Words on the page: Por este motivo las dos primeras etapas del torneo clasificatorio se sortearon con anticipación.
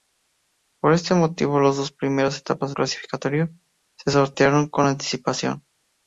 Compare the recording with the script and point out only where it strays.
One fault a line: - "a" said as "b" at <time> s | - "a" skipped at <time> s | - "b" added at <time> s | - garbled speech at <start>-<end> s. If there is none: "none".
- "del torneo" skipped at 2.7 s